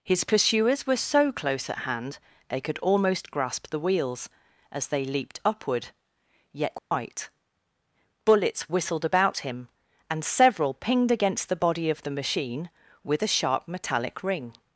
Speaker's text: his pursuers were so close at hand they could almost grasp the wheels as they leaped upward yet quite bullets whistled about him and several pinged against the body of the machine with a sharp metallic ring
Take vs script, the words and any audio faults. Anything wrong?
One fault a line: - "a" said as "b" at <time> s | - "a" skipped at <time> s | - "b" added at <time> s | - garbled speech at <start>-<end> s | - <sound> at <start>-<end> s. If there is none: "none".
- dropout at 6.8-6.9 s